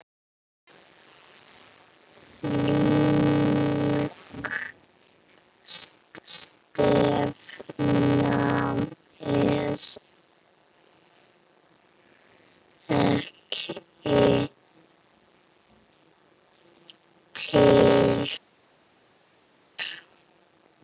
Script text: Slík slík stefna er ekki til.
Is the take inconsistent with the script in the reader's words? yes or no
no